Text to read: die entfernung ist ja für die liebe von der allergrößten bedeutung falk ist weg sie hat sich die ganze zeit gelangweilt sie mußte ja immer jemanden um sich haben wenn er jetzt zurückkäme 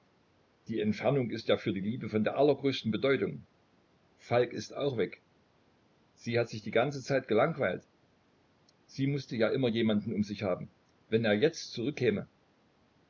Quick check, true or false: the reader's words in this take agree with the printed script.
false